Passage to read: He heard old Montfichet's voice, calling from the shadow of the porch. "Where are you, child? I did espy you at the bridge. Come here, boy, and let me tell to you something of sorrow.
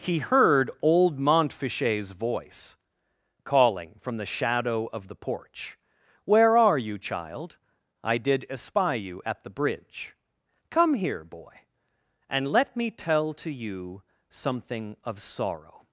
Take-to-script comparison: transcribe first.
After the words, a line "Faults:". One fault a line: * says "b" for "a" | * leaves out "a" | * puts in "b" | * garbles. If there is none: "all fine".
He heard old Montfichet's voice, calling from the shadow of the porch. "Where are you, child? I did espy you at the bridge. Come here, boy, and let me tell to you something of sorrow.
Faults:
all fine